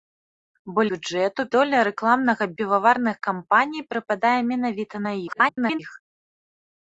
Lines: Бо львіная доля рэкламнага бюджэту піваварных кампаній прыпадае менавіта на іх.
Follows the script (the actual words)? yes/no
no